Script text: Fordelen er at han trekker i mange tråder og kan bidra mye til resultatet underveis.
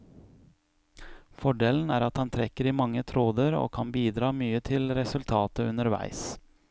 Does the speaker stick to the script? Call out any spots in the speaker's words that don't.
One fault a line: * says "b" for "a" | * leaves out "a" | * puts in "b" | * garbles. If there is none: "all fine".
all fine